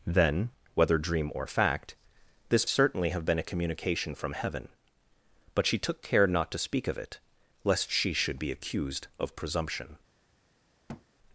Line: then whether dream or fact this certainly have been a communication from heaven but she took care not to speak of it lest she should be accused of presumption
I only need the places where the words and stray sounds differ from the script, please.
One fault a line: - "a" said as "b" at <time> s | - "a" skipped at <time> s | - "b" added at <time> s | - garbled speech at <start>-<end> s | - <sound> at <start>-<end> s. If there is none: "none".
- thud at 10.9-11.1 s